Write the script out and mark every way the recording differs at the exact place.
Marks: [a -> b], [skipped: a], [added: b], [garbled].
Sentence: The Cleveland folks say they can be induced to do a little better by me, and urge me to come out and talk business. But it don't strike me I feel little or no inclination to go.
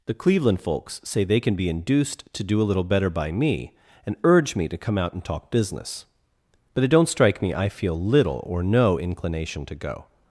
The Cleveland folks say they can be induced to do a little better by me, and urge me to come out and talk business. But it don't strike me I feel little or no inclination to go.